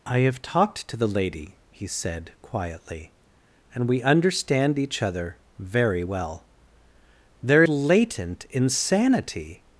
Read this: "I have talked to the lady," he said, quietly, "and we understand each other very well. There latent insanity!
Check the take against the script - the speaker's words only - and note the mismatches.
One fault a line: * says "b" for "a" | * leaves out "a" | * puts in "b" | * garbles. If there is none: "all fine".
all fine